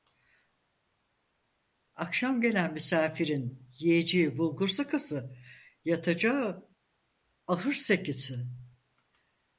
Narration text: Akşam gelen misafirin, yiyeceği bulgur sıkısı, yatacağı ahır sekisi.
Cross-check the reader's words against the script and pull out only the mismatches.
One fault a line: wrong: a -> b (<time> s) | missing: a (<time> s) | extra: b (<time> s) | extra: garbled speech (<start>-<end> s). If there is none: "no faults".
no faults